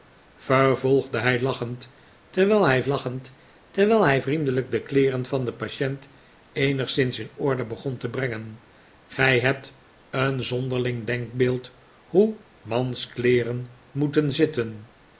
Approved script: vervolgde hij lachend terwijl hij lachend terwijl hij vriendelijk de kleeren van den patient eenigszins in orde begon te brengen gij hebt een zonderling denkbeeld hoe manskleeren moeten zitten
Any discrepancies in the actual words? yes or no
no